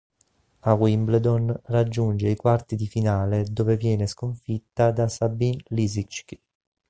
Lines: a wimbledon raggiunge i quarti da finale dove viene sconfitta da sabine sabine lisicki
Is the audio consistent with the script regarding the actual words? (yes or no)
no